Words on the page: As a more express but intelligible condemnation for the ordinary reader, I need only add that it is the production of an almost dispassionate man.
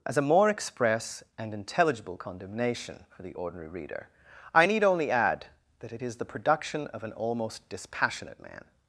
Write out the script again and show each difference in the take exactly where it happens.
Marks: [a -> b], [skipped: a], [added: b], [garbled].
As a more express [but -> and] intelligible condemnation for the ordinary reader, I need only add that it is the production of an almost dispassionate man.